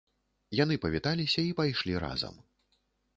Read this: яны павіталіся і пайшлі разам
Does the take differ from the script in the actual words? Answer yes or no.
no